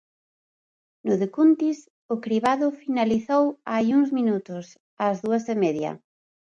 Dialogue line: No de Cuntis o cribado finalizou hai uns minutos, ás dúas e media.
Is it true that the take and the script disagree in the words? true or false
false